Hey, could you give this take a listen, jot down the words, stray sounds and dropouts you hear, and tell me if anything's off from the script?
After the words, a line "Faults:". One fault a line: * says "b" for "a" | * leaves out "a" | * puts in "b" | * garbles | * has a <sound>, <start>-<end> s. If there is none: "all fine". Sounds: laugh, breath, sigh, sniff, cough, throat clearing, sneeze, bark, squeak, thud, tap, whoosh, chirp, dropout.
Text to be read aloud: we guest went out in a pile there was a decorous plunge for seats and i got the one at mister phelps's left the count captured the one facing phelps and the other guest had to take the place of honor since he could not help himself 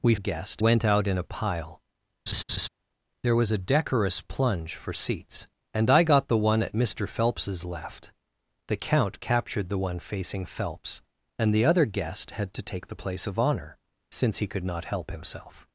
we guest went out in a pile there was a decorous plunge for seats and i got the one at mister phelps's left the count captured the one facing phelps and the other guest had to take the place of honor since he could not help himself
Faults:
* has a laugh, 2.3-2.7 s